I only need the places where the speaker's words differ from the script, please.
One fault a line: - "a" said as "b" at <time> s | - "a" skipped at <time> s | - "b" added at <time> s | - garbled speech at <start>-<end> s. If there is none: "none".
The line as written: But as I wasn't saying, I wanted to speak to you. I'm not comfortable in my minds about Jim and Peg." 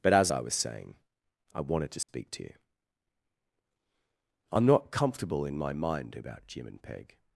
- "wasn't" said as "was" at 0.4 s
- "minds" said as "mind" at 5.7 s